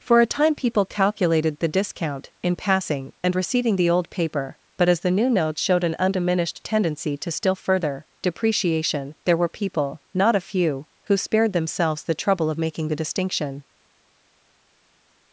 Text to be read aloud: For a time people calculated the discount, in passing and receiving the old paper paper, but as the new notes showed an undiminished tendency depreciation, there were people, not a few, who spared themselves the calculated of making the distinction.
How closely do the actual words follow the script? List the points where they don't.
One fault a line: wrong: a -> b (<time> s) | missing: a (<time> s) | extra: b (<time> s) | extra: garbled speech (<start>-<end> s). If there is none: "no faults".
missing: paper (4.6 s)
extra: to still further (7.2 s)
wrong: calculated -> trouble (12.1 s)